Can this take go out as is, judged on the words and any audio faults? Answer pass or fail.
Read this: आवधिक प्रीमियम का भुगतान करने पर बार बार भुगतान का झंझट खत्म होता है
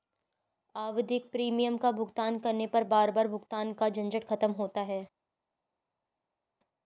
pass